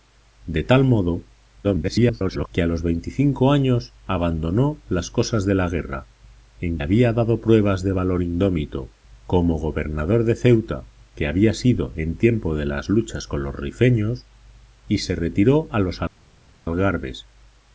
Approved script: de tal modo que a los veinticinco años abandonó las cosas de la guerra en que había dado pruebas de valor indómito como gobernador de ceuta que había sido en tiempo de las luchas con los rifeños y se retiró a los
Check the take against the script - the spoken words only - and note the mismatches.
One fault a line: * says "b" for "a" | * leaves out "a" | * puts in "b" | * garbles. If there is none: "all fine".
* garbles
* leaves out "que"